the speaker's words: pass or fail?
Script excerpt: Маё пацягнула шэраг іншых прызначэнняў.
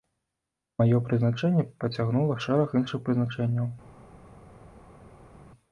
fail